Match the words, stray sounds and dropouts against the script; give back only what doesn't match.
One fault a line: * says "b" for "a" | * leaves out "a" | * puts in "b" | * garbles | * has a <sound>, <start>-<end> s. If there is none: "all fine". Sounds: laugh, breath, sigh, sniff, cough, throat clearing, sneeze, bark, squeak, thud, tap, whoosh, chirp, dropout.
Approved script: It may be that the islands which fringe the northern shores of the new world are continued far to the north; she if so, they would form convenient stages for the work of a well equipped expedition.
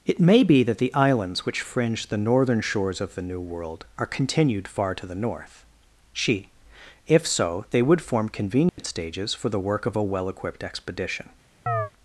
* has a dropout, 8.7-8.8 s
* has a chirp, 11.7-11.9 s